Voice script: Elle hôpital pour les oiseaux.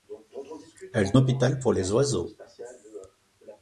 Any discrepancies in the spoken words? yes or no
no